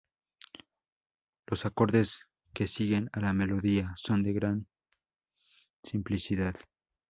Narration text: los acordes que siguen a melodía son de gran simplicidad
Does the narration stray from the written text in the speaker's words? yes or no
yes